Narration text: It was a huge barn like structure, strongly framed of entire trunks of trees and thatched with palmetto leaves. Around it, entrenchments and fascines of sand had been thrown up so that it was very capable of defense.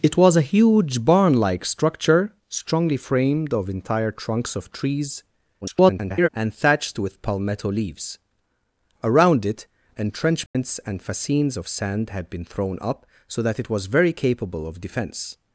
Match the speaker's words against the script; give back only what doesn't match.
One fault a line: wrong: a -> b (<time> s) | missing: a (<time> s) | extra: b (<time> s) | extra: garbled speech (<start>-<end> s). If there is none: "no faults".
extra: garbled speech (5.6-6.3 s)